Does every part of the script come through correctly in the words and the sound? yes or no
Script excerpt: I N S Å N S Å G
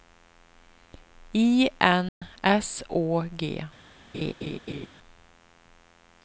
no